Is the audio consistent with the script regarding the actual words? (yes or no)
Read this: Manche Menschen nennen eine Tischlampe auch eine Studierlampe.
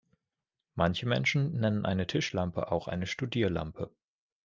yes